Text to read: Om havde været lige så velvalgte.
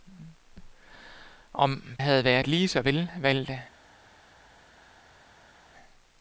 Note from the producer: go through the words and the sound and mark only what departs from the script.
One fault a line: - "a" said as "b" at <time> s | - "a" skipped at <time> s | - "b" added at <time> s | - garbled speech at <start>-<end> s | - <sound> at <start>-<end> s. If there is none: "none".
none